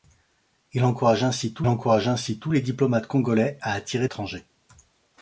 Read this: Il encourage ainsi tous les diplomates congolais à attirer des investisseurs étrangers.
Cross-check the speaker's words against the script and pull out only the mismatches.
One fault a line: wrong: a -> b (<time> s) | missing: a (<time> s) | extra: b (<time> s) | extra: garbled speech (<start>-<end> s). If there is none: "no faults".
extra: encourage ainsi tous (1.7 s)
missing: des investisseurs (4.1 s)